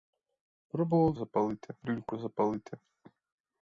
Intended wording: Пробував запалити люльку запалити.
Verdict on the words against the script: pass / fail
pass